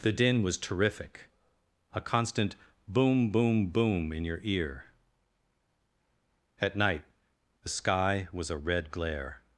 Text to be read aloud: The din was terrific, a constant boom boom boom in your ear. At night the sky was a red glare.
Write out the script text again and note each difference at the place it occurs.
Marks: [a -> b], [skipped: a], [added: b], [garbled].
The din was terrific, a constant boom boom boom in your ear. At night the sky was a red glare.